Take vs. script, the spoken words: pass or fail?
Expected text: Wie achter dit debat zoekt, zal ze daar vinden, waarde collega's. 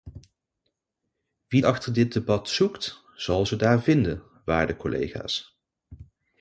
pass